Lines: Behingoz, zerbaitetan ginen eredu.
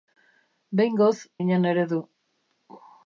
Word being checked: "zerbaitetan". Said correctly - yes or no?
no